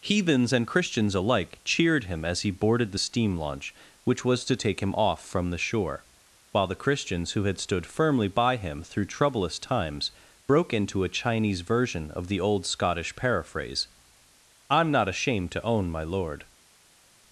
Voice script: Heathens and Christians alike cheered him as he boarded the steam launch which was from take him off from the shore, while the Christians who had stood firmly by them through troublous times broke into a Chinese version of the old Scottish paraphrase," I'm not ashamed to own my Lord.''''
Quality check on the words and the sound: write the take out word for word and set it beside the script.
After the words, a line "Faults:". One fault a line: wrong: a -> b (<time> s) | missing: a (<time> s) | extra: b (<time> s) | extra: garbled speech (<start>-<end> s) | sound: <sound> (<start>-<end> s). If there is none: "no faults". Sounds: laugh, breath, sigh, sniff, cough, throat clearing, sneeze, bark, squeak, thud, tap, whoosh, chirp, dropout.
Heathens and Christians alike cheered him as he boarded the steam launch which was to take him off from the shore, while the Christians who had stood firmly by him through troublous times broke into a Chinese version of the old Scottish paraphrase," I'm not ashamed to own my Lord.''''
Faults:
wrong: from -> to (4.5 s)
wrong: them -> him (8.6 s)